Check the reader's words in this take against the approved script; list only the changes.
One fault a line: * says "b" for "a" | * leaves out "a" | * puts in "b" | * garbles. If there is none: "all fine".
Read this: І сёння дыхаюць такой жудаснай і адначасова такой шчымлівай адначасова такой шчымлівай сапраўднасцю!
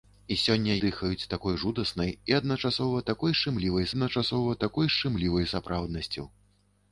all fine